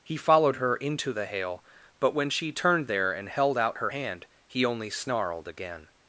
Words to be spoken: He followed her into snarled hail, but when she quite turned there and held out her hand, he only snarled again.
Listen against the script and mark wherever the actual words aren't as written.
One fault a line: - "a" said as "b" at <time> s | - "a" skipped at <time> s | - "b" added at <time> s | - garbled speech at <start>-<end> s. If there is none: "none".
- "snarled" said as "the" at 1.1 s
- "quite" skipped at 2.5 s